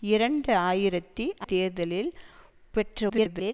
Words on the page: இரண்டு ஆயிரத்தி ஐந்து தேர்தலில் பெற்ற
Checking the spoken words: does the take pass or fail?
fail